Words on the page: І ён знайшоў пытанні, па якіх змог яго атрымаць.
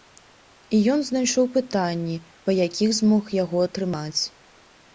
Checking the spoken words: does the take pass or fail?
pass